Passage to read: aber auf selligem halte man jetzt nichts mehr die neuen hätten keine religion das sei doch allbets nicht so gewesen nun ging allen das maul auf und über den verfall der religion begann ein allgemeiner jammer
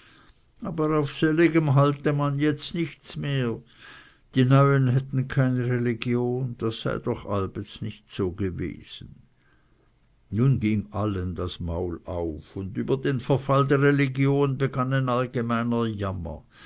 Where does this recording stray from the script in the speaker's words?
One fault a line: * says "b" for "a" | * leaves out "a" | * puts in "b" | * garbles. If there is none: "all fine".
all fine